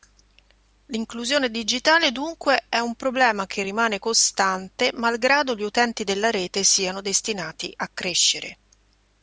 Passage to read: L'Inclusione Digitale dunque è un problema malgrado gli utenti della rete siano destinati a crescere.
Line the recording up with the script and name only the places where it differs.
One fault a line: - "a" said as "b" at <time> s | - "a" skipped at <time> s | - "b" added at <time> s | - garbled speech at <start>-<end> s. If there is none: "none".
- "che rimane costante" added at 3.5 s